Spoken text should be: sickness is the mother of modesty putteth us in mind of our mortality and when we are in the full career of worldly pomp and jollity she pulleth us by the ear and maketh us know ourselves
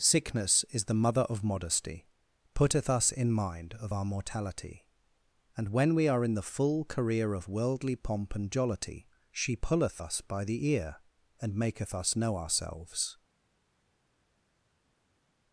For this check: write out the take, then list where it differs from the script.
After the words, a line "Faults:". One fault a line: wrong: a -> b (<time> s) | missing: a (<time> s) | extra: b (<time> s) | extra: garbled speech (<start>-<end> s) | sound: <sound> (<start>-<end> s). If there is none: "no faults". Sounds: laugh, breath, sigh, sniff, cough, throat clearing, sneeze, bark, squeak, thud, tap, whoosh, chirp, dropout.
sickness is the mother of modesty putteth us in mind of our mortality and when we are in the full career of worldly pomp and jollity she pulleth us by the ear and maketh us know ourselves
Faults:
no faults